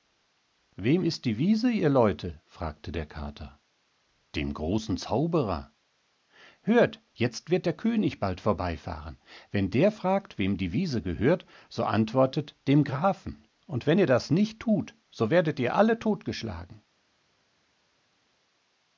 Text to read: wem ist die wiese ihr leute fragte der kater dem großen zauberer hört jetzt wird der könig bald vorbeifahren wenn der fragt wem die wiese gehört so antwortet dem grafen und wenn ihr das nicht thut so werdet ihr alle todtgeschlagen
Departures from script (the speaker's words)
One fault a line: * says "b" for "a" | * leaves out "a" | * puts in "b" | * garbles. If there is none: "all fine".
all fine